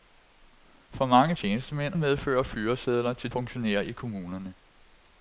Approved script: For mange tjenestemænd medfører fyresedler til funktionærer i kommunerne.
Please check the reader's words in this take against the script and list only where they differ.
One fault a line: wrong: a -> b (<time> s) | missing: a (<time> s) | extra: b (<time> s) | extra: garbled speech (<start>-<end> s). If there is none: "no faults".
no faults